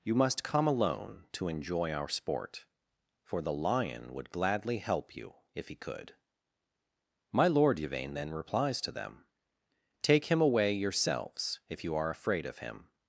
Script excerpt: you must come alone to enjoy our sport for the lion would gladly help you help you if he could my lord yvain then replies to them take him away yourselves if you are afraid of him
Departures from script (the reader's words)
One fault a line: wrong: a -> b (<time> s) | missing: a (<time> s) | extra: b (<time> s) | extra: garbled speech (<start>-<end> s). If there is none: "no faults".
missing: help you (5.4 s)